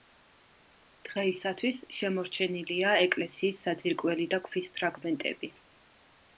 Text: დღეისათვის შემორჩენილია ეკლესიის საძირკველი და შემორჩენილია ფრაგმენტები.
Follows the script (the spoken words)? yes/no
no